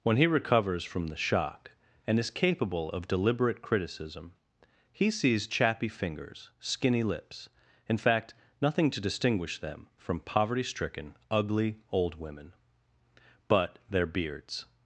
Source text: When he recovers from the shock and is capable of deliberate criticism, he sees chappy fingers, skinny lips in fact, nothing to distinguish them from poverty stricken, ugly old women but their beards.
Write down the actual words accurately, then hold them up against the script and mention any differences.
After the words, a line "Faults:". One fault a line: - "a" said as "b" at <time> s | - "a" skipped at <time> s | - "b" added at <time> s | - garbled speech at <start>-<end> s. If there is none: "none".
When he recovers from the shock and is capable of deliberate criticism, he sees chappy fingers, skinny lips in fact, nothing to distinguish them from poverty stricken, ugly old women but their beards.
Faults:
none